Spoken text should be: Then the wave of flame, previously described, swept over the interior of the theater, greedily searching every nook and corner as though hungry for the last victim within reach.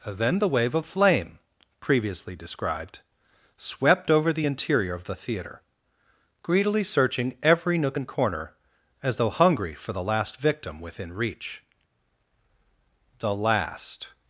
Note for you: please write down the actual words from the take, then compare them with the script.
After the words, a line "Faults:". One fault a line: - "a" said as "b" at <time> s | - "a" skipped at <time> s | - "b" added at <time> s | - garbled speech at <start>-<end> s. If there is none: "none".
Then the wave of flame, previously described, swept over the interior of the theater, greedily searching every nook and corner as though hungry for the last victim within reach. The last
Faults:
- "The last" added at 13.2 s